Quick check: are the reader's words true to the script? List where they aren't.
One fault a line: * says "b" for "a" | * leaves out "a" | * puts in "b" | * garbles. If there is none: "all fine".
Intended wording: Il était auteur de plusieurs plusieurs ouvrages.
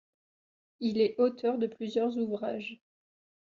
* says "est" for "était"
* leaves out "plusieurs"